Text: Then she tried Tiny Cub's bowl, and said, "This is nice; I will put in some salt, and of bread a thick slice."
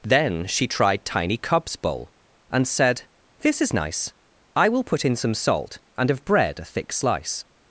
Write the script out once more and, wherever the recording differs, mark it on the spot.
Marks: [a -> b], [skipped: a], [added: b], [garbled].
Then she tried Tiny Cub's bowl, and said, "This is nice; I will put in some salt, and of bread a thick slice."